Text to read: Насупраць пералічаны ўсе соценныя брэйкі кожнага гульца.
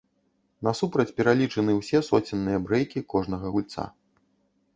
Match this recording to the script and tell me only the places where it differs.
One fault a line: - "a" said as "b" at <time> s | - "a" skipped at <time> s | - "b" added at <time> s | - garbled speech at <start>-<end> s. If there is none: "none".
none